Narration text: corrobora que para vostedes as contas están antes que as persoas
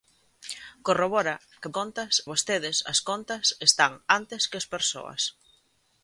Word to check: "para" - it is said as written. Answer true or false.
false